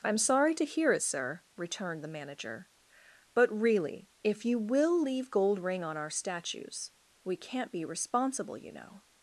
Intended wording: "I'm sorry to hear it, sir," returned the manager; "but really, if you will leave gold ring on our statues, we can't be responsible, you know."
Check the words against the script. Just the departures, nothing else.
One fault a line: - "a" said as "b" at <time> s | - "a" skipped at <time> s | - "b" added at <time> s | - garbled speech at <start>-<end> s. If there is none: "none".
none